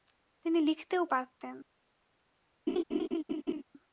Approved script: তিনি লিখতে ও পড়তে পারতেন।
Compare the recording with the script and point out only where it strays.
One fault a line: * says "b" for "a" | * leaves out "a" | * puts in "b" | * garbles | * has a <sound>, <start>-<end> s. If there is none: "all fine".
* leaves out "পড়তে"
* has a laugh, 2.7-3.6 s